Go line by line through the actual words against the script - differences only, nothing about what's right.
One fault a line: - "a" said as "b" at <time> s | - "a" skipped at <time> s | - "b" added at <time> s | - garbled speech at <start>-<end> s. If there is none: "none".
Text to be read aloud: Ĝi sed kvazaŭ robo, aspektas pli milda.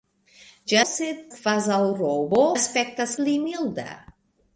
none